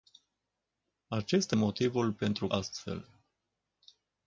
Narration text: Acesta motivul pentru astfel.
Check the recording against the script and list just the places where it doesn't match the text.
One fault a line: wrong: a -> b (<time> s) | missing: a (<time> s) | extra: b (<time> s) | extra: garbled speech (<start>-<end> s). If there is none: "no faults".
no faults